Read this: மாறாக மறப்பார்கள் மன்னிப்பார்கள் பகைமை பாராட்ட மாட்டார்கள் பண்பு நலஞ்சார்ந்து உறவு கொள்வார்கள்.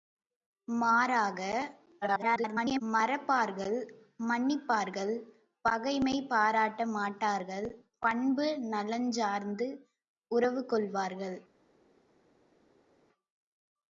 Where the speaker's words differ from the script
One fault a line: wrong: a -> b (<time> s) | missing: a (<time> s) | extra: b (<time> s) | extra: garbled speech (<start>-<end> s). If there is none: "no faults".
extra: garbled speech (2.0-2.8 s)